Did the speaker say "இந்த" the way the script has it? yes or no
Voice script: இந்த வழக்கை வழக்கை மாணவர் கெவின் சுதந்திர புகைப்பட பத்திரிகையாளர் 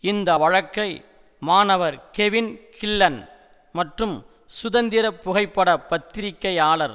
yes